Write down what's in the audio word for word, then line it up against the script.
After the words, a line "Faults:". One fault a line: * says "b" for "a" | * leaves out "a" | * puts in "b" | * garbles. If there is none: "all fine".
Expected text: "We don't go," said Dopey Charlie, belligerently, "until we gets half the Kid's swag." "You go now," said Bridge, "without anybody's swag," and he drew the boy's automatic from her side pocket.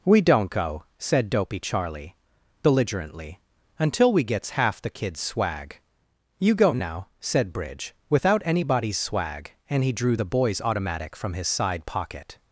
"We don't go," said Dopey Charlie, belligerently, "until we gets half the Kid's swag." "You go now," said Bridge, "without anybody's swag," and he drew the boy's automatic from his side pocket.
Faults:
* says "his" for "her"